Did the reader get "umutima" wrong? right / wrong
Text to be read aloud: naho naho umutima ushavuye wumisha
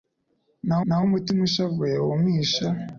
right